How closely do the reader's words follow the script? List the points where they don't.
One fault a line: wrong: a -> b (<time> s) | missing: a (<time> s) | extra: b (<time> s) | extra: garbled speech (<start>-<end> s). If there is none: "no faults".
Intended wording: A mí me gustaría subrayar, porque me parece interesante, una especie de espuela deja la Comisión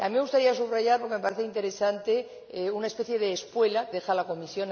no faults